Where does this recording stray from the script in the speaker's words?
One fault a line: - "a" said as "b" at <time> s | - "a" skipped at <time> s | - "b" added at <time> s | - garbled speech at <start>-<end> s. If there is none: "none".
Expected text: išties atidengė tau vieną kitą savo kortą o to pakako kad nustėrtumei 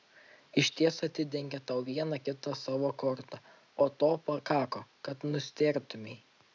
none